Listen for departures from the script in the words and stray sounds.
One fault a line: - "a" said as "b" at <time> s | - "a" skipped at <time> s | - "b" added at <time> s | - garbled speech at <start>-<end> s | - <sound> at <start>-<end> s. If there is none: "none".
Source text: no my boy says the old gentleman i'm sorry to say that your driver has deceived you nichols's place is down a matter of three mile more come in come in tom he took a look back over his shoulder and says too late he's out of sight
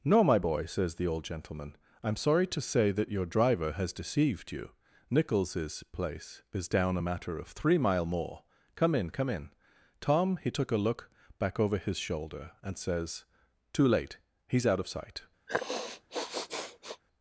- sniff at 15.5-17.0 s